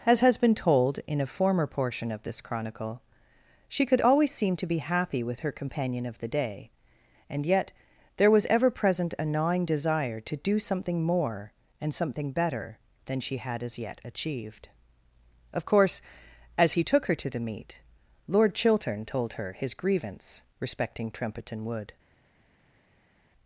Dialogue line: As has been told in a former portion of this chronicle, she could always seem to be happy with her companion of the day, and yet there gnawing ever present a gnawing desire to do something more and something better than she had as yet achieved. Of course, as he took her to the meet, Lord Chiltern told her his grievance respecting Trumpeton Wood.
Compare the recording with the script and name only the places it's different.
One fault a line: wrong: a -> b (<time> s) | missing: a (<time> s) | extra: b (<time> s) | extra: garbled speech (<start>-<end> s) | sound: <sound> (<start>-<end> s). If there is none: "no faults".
wrong: gnawing -> was (8.3 s)